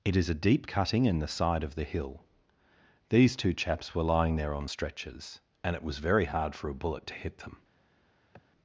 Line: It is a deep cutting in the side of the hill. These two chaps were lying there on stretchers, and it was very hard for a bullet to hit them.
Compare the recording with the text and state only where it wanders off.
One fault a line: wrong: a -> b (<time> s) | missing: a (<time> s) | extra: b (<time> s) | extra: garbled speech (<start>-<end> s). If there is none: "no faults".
no faults